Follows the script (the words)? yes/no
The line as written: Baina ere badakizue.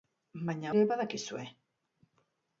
yes